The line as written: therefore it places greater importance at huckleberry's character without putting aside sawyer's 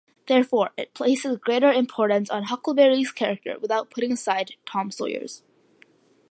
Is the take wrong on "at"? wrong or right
wrong